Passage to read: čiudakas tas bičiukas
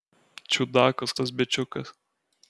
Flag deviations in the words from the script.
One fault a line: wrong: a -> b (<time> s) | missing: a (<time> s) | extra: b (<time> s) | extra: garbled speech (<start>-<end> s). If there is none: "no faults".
no faults